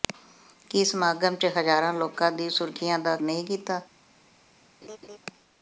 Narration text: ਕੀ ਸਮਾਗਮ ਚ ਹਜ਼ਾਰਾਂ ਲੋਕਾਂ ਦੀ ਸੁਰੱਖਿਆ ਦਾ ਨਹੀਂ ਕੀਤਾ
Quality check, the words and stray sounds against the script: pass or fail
fail